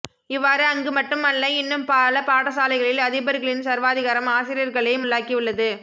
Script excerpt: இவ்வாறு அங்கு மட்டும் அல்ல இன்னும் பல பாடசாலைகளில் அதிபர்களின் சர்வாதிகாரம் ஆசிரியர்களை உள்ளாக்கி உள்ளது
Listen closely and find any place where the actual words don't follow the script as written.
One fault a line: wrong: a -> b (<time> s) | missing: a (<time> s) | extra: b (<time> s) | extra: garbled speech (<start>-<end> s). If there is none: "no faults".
no faults